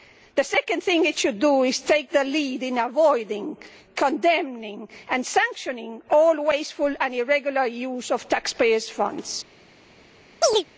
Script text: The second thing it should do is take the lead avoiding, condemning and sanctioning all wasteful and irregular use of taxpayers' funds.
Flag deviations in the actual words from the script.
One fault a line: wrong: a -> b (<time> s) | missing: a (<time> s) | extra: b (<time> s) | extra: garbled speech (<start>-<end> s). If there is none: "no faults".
extra: in (2.6 s)